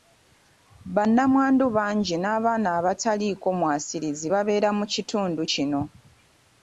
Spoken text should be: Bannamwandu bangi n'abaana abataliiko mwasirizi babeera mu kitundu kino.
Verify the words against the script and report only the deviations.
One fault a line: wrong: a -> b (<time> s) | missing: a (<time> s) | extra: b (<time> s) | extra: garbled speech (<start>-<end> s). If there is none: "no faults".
no faults